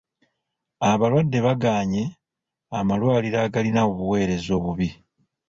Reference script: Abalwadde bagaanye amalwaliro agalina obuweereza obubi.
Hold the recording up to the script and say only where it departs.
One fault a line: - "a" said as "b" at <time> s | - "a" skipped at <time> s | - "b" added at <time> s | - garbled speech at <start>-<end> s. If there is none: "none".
none